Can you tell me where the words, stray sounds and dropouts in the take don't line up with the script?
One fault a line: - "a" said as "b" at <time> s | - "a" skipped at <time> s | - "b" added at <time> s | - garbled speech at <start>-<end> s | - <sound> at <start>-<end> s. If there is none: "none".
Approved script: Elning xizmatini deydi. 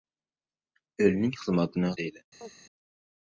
- chirp at 2.4-2.5 s